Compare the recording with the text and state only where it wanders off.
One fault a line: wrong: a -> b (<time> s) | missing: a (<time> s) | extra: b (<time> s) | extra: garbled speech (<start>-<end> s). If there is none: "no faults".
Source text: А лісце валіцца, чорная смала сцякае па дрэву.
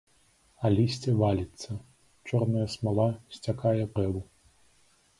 missing: па (3.8 s)